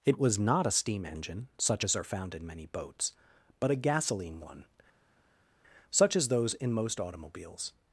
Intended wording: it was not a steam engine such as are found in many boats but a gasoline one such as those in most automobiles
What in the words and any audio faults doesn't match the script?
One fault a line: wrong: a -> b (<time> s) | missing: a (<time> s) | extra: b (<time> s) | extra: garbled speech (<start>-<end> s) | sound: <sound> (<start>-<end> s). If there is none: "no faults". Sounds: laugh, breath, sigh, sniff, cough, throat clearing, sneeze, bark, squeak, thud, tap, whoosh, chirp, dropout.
no faults